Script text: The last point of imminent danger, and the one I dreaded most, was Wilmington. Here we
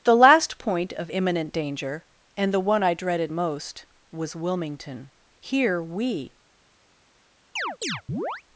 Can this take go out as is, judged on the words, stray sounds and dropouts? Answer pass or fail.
fail